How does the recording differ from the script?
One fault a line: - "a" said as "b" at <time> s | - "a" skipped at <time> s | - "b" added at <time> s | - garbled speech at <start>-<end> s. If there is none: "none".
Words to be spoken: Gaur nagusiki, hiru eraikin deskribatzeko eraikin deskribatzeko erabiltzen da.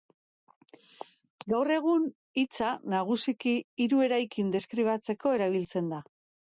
- "egun hitza" added at 1.8 s
- "eraikin deskribatzeko" skipped at 5.4 s